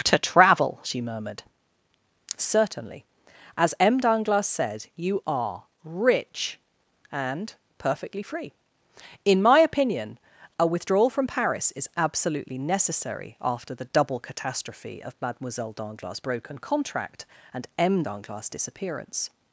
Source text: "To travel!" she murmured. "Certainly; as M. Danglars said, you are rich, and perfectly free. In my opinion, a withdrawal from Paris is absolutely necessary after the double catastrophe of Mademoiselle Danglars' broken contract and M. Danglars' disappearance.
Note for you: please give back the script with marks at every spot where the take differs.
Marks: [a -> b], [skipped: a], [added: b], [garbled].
"To travel!" she murmured. "Certainly; as M. Danglars said, you are rich, and perfectly free. In my opinion, a withdrawal from Paris is absolutely necessary after the double catastrophe of Mademoiselle Danglars' broken contract and M. Danglars' disappearance.